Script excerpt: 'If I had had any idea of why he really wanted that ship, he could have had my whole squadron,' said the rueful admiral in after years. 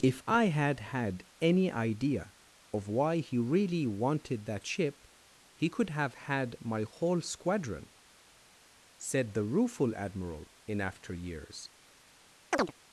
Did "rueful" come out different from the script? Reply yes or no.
no